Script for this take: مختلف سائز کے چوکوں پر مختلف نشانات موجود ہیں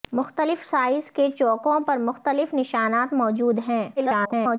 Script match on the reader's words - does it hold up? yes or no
no